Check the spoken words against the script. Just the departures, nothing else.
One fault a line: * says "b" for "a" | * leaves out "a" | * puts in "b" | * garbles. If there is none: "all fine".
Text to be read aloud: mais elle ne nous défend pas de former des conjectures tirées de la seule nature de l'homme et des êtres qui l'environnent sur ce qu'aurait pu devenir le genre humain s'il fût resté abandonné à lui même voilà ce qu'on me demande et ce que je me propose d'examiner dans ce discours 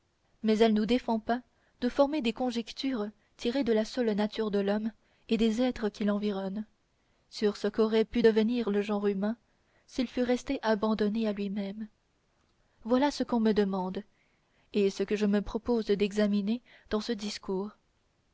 * leaves out "ne"